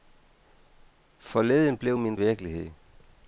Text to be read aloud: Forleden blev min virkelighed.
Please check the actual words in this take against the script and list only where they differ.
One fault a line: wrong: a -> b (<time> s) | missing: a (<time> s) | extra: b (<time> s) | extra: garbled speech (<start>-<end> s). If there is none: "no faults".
no faults